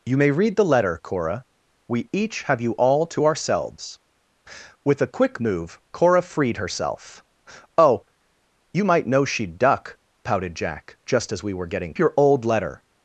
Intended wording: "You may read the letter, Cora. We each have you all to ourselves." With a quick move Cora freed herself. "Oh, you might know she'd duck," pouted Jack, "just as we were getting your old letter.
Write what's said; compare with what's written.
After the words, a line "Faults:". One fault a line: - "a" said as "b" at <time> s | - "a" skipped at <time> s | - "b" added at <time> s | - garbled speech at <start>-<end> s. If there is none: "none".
"You may read the letter, Cora. We each have you all to ourselves." With a quick move Cora freed herself. "Oh, you might know she'd duck," pouted Jack, "just as we were getting your old letter.
Faults:
none